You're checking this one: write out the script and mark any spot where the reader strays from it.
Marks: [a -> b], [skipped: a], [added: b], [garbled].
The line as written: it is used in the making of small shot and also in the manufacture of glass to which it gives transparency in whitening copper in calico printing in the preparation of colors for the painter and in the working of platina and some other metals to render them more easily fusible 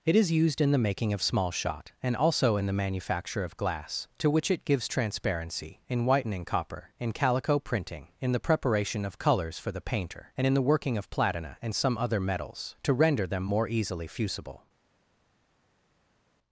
it is used in the making of small shot and also in the manufacture of glass to which it gives transparency in whitening copper in calico printing in the preparation of colors for the painter and in the working of platina and some other metals to render them more easily fusible